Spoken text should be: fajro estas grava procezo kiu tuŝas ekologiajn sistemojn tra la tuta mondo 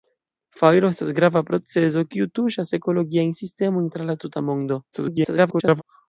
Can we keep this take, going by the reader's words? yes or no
no